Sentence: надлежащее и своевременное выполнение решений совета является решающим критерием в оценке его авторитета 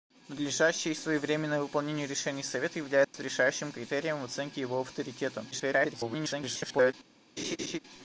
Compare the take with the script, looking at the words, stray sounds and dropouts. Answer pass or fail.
fail